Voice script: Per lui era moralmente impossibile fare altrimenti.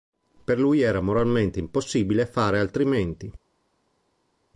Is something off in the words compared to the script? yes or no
no